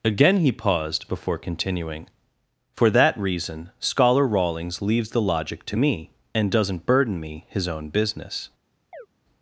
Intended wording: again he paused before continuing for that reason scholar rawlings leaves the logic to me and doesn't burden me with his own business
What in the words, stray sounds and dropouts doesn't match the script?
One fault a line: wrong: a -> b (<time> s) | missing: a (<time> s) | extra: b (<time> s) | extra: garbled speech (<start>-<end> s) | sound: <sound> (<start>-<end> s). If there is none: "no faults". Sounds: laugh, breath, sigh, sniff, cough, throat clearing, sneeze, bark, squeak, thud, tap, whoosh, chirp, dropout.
missing: with (7.5 s)
sound: chirp (8.9-9.1 s)